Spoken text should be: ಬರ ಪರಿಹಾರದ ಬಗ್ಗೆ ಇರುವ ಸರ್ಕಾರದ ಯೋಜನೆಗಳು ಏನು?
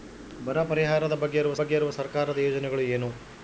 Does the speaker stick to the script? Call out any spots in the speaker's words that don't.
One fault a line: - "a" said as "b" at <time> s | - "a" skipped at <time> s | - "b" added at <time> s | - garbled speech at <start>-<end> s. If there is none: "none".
- "ಬಗ್ಗೆ ಇರುವ" added at 1.6 s